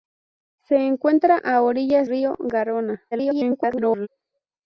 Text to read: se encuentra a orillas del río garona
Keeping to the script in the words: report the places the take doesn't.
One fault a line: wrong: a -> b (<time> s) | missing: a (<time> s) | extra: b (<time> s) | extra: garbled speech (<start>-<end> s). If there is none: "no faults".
missing: del (2.1 s)
extra: garbled speech (3.1-4.1 s)